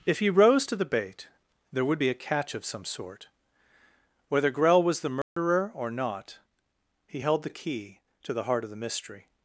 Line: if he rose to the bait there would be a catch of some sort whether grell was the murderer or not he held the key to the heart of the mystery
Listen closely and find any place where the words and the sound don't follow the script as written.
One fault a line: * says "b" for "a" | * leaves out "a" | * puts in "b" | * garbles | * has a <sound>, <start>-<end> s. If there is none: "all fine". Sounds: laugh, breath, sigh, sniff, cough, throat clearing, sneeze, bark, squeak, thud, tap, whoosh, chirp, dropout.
* has a dropout, 5.2-5.4 s